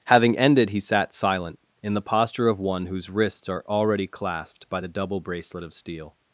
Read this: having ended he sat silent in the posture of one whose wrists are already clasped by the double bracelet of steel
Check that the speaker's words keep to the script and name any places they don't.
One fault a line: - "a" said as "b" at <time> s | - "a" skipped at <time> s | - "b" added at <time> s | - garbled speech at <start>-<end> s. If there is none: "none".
none